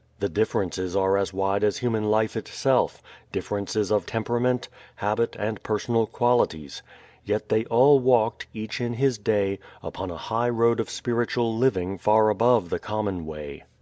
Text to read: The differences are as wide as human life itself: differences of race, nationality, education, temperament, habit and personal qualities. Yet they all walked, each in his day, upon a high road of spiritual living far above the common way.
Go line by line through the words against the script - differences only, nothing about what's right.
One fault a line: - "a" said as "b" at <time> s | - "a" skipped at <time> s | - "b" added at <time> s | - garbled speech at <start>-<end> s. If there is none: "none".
- "race nationality education" skipped at 4.1 s